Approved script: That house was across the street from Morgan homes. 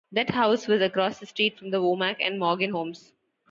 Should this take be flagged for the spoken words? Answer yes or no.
yes